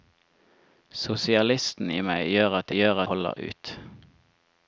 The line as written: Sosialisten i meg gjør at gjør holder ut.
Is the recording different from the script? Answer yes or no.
no